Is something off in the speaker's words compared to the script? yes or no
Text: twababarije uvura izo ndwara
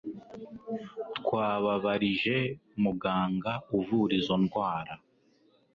yes